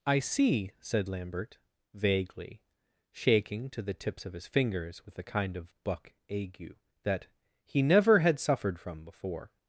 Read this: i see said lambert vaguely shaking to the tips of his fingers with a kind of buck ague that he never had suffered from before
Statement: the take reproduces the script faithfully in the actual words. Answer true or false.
true